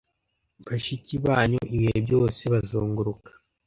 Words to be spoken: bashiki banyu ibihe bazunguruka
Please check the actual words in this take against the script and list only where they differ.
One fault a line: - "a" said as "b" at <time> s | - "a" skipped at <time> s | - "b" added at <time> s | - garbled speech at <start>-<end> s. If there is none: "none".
- "byose" added at 2.1 s